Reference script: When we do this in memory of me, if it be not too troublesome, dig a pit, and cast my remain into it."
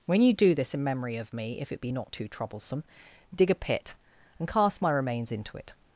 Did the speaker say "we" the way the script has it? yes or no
no